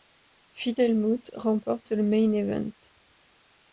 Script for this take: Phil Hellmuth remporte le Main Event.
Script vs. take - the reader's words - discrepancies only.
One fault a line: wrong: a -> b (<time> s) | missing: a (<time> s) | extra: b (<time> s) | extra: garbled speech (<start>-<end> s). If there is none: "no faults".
no faults